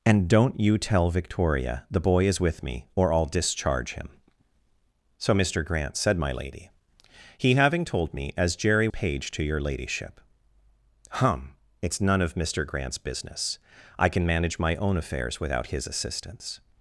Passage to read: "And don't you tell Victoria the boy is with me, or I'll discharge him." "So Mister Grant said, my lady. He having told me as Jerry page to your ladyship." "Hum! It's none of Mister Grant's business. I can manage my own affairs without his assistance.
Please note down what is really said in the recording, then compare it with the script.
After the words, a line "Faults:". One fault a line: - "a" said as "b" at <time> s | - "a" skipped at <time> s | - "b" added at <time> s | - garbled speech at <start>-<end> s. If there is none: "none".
"And don't you tell Victoria the boy is with me, or I'll discharge him." "So Mister Grant said, my lady. He having told me as Jerry page to your ladyship." "Hum! It's none of Mister Grant's business. I can manage my own affairs without his assistance.
Faults:
none